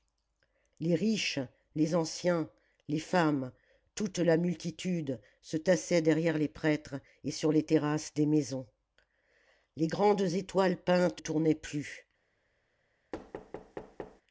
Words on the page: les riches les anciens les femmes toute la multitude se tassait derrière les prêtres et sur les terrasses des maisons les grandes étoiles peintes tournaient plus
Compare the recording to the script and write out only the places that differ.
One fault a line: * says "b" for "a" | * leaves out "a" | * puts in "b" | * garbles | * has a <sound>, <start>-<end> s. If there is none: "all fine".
* has a thud, 13.1-14.2 s